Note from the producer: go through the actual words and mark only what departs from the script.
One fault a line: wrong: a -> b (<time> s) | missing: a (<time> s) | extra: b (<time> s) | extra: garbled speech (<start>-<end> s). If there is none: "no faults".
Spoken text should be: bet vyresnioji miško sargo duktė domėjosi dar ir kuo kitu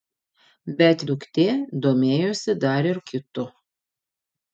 missing: vyresnioji miško sargo (1.0 s)
missing: kuo (3.0 s)